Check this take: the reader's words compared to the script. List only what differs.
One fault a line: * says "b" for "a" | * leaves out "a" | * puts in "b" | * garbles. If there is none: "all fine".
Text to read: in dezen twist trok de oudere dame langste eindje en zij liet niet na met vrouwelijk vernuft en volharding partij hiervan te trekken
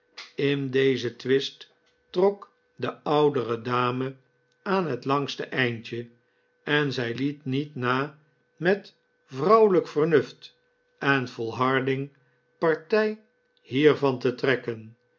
* puts in "aan het"